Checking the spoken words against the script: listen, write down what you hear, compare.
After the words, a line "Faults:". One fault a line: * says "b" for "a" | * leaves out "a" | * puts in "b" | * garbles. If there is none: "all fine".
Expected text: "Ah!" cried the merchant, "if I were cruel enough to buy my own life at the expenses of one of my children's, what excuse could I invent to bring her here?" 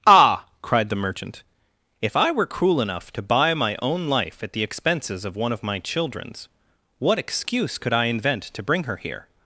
"Ah!" cried the merchant, "if I were cruel enough to buy my own life at the expenses of one of my children's, what excuse could I invent to bring her here?"
Faults:
all fine